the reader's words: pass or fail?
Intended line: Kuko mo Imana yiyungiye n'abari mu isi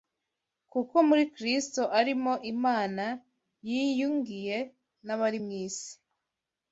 fail